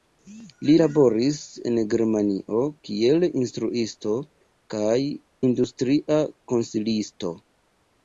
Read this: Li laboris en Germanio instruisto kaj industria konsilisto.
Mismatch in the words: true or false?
true